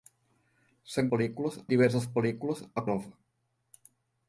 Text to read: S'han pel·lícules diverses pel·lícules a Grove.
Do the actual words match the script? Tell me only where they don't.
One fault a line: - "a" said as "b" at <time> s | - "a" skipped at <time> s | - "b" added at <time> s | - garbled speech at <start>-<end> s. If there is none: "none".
none